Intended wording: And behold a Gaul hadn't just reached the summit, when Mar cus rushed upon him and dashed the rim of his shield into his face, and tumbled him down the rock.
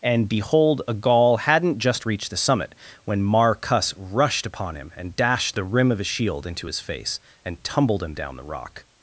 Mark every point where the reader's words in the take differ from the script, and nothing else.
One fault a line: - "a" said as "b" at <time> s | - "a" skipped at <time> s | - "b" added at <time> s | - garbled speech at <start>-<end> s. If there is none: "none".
none